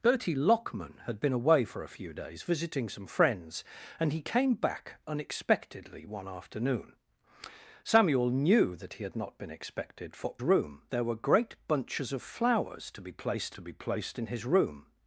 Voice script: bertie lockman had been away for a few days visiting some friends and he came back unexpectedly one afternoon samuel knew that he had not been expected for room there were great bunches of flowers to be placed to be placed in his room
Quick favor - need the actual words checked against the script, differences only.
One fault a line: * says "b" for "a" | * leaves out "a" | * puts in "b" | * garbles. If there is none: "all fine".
all fine